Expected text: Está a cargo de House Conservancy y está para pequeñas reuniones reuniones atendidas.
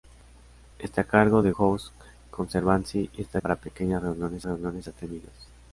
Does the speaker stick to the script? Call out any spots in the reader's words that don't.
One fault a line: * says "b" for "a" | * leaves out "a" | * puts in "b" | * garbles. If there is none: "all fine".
all fine